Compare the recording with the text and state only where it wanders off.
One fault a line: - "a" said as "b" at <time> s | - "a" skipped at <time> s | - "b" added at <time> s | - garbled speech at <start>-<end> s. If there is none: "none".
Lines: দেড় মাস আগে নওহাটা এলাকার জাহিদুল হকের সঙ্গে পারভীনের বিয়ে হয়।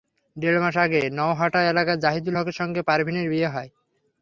none